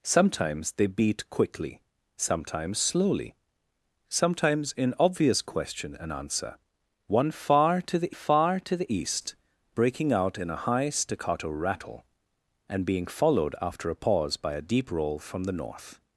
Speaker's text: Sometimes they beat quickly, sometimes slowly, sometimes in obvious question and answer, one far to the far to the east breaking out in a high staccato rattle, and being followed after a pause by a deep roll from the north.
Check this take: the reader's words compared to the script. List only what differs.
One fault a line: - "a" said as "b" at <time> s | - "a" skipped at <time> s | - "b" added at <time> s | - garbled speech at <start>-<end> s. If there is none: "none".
none